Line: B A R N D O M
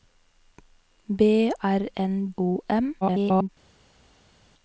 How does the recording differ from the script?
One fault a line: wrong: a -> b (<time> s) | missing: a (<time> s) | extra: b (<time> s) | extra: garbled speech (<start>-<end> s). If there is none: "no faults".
missing: A (1.5 s)
missing: D (2.3 s)
extra: garbled speech (3.0-3.5 s)